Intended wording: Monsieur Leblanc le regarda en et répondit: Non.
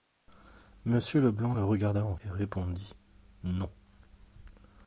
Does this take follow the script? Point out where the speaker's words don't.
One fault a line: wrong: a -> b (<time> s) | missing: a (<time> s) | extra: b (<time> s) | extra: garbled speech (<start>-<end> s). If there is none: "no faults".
no faults